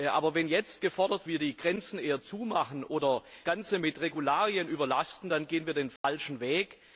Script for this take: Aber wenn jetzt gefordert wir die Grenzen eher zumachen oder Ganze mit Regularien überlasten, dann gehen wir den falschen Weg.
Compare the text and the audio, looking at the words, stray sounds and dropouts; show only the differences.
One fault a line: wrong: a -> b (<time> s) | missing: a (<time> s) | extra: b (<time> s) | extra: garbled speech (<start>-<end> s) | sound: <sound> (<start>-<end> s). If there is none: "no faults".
sound: dropout (6.0-6.0 s)